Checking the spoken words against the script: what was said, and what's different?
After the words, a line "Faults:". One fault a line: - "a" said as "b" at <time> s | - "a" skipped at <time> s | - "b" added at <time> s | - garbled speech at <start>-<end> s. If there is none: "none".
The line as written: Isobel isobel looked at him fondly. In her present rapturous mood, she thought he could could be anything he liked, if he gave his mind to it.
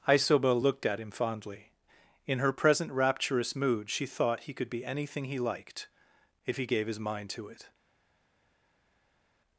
Isobel looked at him fondly. In her present rapturous mood, she thought he could be anything he liked, if he gave his mind to it.
Faults:
- "isobel" skipped at 0.6 s
- "could" skipped at 4.7 s